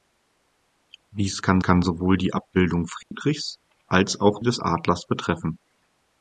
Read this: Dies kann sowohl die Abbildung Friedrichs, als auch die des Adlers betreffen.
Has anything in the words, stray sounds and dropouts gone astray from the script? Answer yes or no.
yes